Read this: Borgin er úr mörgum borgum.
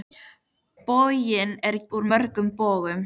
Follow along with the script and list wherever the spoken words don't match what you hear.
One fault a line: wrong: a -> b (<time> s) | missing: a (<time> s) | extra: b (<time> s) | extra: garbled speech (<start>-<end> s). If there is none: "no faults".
no faults